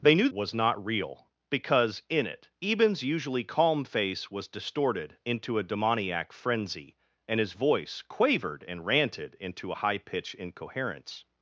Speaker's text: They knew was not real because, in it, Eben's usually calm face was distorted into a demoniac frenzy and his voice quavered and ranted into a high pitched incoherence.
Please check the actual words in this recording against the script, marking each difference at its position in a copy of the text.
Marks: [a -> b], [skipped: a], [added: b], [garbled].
They knew was not real because, in it, Eben's usually calm face was distorted into a demoniac frenzy and his voice quavered and ranted into a high pitched incoherence.